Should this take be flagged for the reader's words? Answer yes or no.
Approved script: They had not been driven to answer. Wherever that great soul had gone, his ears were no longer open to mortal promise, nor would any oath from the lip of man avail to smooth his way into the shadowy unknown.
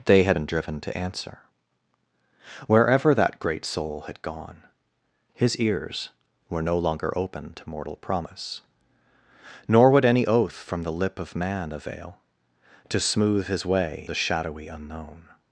yes